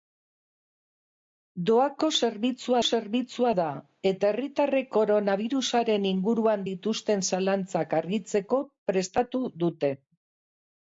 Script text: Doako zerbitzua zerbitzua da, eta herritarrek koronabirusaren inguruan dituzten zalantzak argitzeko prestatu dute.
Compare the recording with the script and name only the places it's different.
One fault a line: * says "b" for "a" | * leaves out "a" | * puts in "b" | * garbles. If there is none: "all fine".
all fine